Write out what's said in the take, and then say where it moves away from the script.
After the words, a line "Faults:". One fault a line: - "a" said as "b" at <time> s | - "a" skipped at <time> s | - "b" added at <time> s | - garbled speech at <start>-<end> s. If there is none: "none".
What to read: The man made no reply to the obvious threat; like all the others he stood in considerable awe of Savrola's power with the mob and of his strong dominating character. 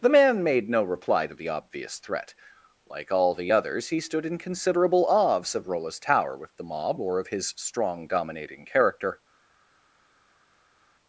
The man made no reply to the obvious threat; like all the others he stood in considerable awe of Savrola's tower with the mob or of his strong dominating character.
Faults:
- "power" said as "tower" at 6.0 s
- "and" said as "or" at 7.0 s